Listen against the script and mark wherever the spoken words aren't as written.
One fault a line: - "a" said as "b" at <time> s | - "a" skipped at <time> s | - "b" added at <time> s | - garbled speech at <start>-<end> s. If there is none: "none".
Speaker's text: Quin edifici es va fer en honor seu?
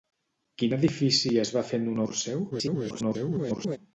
- garbled speech at 2.5-3.8 s